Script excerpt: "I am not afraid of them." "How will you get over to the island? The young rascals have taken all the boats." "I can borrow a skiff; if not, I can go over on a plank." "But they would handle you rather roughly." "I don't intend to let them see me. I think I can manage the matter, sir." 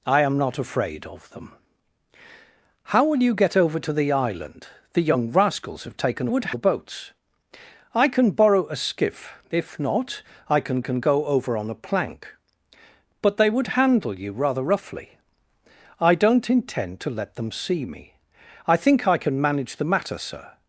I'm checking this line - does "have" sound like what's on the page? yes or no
yes